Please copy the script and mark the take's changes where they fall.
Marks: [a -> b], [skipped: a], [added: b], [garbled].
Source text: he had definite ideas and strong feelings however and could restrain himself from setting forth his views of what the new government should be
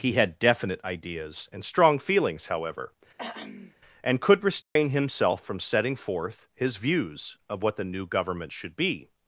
he had definite ideas and strong feelings however and could restrain himself from setting forth his views of what the new government should be